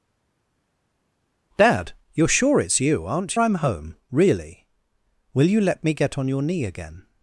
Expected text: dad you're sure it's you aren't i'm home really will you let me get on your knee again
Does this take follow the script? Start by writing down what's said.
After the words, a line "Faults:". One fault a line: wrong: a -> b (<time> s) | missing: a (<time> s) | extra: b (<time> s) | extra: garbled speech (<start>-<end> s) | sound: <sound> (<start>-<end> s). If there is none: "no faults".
dad you're sure it's you aren't i'm home really will you let me get on your knee again
Faults:
no faults